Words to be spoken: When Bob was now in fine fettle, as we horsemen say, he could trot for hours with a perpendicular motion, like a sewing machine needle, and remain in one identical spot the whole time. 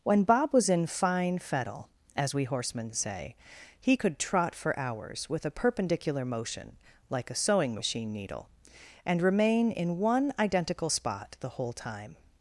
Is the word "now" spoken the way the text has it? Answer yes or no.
no